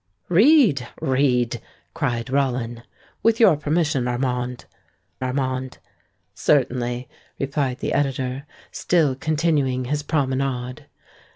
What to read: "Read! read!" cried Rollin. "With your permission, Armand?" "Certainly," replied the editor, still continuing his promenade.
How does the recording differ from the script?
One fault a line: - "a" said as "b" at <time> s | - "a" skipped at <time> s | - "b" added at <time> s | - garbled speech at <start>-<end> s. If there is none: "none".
- "Armand" added at 5.2 s